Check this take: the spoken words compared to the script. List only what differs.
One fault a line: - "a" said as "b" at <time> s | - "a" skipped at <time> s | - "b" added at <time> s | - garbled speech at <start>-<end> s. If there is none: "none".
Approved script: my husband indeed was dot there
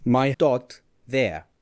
- "husband indeed was" skipped at 0.3 s